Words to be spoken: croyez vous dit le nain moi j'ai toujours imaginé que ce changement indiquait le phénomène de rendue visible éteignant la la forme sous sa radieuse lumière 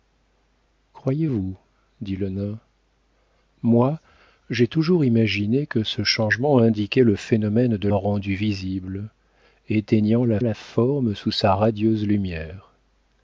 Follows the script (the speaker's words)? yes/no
yes